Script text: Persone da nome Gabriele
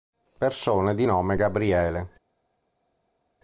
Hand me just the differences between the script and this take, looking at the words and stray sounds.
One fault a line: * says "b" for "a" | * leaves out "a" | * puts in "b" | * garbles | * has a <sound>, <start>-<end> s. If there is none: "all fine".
* says "di" for "da"